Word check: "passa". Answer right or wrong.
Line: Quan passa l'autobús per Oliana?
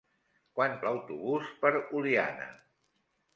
wrong